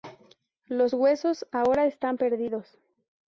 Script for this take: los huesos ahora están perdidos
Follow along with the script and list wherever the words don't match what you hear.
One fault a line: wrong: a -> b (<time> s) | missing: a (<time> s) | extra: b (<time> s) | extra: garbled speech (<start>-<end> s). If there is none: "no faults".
no faults